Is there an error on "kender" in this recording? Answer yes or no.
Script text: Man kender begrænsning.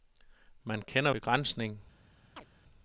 no